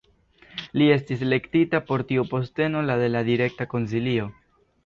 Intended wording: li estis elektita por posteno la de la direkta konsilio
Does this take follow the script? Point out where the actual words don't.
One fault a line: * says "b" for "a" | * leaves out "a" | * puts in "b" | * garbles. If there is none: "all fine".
* puts in "tiu"